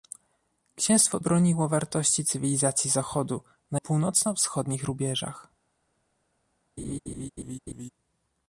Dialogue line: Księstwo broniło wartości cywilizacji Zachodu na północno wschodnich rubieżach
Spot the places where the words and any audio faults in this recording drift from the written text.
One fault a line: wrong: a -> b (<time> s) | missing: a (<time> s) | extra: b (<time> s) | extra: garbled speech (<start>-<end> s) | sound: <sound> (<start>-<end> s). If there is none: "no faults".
sound: laugh (6.8-7.9 s)